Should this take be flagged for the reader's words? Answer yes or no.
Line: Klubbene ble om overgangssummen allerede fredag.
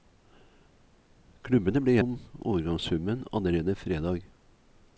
no